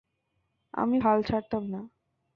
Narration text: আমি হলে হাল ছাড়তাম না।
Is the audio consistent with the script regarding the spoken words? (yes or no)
no